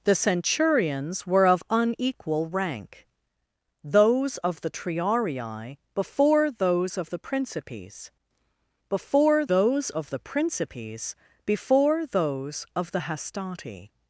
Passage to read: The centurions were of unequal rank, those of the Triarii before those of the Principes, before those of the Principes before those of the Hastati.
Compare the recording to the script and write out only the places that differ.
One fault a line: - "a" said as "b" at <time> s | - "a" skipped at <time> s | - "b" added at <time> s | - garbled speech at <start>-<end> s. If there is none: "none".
none